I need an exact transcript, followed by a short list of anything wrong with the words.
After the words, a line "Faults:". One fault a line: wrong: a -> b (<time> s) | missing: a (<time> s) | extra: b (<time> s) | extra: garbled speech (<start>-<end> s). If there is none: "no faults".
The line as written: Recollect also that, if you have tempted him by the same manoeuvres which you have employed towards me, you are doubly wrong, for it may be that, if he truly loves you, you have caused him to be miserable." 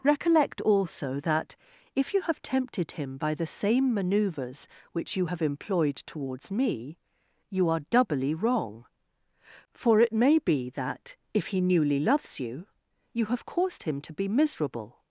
Recollect also that, if you have tempted him by the same manoeuvres which you have employed towards me, you are doubly wrong, for it may be that, if he newly loves you, you have caused him to be miserable."
Faults:
wrong: truly -> newly (11.6 s)